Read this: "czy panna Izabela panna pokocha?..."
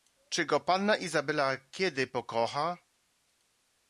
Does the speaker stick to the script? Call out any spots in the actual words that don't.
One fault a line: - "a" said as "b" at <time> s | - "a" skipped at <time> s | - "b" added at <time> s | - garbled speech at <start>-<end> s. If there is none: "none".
- "go" added at 0.5 s
- "panna" said as "kiedy" at 1.6 s